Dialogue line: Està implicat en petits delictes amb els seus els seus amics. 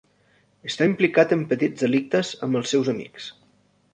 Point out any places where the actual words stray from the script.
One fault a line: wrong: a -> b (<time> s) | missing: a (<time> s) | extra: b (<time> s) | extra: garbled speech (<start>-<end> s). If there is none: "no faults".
missing: els seus (2.9 s)